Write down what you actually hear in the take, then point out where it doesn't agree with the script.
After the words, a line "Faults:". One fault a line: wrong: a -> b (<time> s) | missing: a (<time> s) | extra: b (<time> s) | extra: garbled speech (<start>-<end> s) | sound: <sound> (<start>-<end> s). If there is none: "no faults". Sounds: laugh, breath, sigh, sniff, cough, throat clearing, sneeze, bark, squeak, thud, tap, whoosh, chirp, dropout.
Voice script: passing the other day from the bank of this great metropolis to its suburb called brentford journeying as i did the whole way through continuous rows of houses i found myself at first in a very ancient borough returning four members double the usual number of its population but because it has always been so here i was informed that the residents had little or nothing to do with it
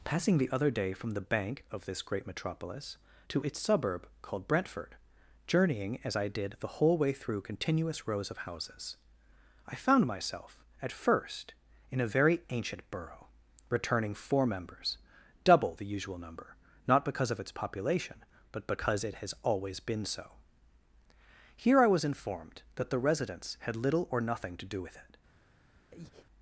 passing the other day from the bank of this great metropolis to its suburb called brentford journeying as i did the whole way through continuous rows of houses i found myself at first in a very ancient borough returning four members double the usual number not because of its population but because it has always been so here i was informed that the residents had little or nothing to do with it
Faults:
extra: not because (16.9 s)
sound: breath (25.9-26.3 s)